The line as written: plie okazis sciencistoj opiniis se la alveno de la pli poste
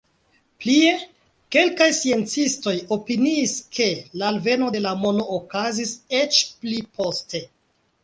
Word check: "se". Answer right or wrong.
wrong